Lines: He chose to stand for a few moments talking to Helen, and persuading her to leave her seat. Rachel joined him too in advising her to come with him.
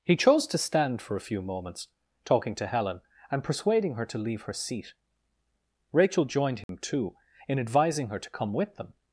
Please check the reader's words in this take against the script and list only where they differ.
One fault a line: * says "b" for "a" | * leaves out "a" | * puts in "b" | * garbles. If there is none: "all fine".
* says "them" for "him"